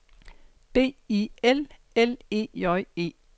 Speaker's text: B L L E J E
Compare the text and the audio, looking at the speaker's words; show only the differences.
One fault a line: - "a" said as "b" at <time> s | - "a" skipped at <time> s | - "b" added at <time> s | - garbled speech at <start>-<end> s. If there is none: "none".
- "I" added at 1.1 s